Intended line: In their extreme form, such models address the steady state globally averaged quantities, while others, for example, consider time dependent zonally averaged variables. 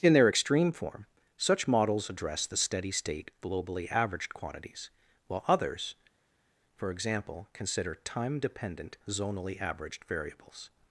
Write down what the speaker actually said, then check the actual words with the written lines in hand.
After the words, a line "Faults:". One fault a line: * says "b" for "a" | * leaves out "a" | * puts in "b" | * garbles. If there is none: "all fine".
In their extreme form, such models address the steady state globally averaged quantities, while others, for example, consider time dependent zonally averaged variables.
Faults:
all fine